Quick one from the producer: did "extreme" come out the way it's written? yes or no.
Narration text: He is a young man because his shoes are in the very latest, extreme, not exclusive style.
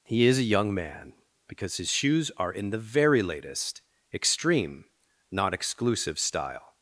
yes